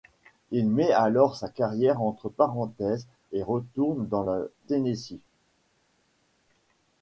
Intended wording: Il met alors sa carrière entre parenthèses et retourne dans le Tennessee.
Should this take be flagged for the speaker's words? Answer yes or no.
no